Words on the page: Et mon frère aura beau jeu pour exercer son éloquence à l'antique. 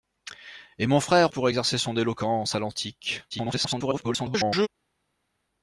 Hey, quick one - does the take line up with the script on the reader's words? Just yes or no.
no